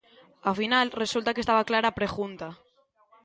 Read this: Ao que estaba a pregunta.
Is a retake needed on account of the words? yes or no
yes